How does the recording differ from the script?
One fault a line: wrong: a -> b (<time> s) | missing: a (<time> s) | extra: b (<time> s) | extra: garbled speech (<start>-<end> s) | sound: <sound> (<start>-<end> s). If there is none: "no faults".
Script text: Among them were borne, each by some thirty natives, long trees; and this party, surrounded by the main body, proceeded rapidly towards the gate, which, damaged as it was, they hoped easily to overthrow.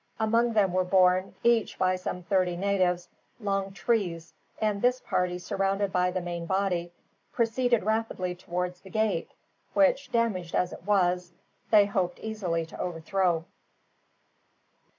no faults